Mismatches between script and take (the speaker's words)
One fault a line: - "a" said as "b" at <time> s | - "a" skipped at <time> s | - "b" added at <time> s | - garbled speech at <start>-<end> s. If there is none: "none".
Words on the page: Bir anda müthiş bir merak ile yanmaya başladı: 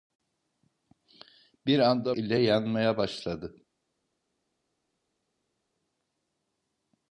- "müthiş bir merak" skipped at 2.1 s